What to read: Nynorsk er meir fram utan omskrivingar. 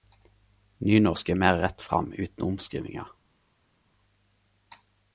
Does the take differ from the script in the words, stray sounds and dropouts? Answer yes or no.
yes